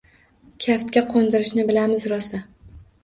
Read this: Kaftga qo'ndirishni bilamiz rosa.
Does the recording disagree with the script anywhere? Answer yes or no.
no